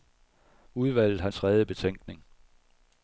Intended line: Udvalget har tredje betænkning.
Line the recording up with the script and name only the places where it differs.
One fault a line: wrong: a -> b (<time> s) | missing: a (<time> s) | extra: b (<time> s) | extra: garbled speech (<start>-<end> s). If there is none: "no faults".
no faults